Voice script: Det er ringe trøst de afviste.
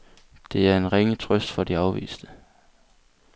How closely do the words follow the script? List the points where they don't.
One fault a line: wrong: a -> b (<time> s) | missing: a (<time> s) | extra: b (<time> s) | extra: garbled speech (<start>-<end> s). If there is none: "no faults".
extra: en (0.8 s)
extra: for (1.5 s)